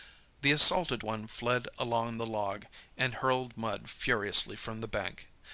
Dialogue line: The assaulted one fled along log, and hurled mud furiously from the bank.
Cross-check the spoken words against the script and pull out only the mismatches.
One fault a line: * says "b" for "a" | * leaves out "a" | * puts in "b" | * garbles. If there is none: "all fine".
* puts in "the"